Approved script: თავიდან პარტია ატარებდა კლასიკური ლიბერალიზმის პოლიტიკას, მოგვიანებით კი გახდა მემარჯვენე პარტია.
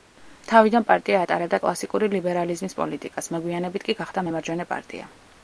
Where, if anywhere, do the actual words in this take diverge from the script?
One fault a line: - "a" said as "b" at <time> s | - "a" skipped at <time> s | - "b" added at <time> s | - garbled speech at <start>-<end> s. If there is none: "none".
none